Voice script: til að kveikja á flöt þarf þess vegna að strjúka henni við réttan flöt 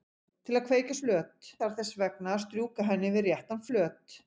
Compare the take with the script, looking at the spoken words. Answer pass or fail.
pass